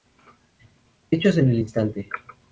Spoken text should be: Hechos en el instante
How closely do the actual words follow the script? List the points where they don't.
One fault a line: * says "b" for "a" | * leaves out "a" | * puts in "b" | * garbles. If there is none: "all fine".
all fine